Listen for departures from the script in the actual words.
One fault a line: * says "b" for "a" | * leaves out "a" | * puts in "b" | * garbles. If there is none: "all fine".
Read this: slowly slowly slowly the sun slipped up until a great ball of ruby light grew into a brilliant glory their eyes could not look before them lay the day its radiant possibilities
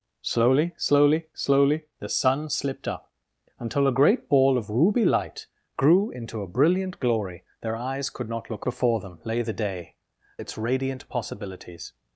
all fine